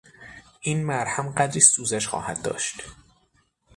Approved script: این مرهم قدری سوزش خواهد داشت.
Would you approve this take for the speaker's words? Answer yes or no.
yes